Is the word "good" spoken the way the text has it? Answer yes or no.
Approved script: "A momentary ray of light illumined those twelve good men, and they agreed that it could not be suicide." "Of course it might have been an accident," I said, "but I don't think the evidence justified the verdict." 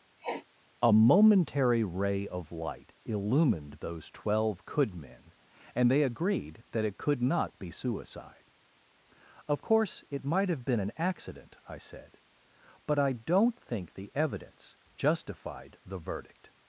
no